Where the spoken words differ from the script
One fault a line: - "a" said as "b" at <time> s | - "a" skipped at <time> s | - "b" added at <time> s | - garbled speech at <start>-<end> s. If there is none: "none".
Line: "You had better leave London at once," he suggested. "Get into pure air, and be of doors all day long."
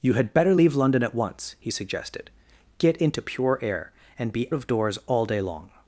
none